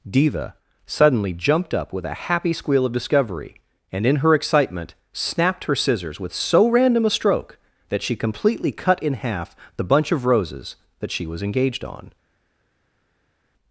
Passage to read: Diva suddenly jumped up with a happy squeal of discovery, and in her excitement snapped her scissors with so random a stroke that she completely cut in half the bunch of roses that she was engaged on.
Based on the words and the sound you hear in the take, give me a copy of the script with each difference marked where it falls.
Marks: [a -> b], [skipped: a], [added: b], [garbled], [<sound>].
Diva suddenly jumped up with a happy squeal of discovery, and in her excitement snapped her scissors with so random a stroke that she completely cut in half the bunch of roses that she was engaged on.